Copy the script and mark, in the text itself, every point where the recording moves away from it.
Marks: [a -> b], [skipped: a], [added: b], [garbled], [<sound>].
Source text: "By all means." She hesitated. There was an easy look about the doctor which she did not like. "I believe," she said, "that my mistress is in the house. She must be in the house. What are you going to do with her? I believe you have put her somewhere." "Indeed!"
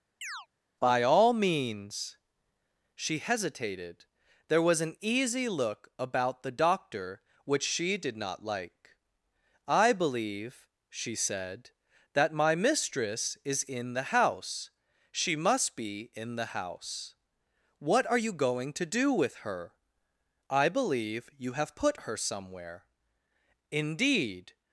[chirp] "By all means." She hesitated. There was an easy look about the doctor which she did not like. "I believe," she said, "that my mistress is in the house. She must be in the house. What are you going to do with her? I believe you have put her somewhere." "Indeed!"